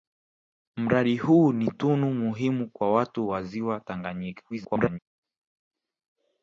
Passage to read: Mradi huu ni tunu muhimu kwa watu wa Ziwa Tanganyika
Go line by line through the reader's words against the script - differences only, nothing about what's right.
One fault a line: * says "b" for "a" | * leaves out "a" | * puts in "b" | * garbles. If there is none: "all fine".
* garbles